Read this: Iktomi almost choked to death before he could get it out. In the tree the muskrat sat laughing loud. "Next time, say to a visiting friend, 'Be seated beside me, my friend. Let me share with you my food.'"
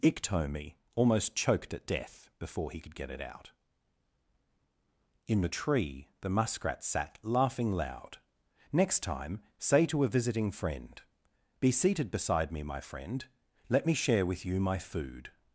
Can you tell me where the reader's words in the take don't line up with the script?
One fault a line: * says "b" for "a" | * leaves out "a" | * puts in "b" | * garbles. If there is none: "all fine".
* says "at" for "to"